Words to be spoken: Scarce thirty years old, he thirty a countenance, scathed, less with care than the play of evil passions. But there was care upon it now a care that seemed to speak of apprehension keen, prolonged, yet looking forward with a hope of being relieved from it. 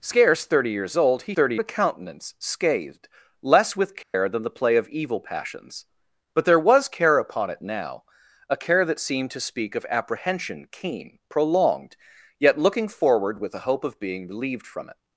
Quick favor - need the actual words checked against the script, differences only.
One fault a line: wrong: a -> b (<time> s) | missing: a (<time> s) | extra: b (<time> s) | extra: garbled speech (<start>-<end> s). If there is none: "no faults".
no faults